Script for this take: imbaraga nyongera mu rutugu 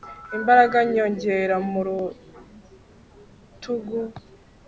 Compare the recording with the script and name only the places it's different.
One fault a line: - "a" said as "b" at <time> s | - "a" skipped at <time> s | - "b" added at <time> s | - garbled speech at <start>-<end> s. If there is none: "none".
none